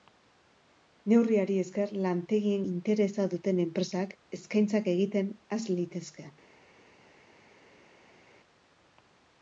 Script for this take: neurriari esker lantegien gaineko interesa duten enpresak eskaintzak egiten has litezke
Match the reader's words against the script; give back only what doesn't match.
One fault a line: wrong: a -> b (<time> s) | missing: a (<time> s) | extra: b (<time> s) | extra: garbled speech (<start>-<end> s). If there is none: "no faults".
missing: gaineko (2.6 s)